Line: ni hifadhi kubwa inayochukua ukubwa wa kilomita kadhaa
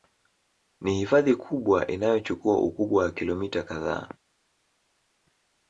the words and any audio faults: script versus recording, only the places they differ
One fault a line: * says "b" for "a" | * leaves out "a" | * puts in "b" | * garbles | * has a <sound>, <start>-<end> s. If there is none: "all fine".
all fine